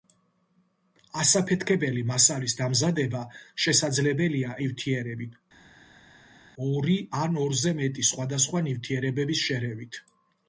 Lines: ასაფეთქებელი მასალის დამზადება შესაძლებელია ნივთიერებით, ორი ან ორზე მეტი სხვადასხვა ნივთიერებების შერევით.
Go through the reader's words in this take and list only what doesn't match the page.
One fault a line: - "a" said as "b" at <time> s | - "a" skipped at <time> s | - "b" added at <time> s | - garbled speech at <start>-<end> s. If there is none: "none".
none